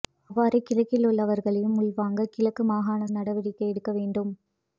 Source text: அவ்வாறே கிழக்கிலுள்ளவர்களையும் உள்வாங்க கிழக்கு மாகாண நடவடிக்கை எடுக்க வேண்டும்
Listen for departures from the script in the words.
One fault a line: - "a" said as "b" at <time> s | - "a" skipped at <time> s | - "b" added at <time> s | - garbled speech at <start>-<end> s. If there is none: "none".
none